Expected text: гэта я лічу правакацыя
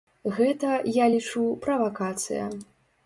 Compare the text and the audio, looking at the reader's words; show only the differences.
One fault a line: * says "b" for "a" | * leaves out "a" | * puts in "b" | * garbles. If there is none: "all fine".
all fine